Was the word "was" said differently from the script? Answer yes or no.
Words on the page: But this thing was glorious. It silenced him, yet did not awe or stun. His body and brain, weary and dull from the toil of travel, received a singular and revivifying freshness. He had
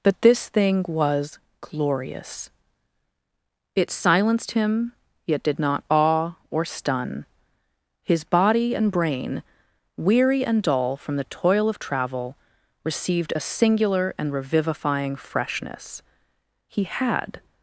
no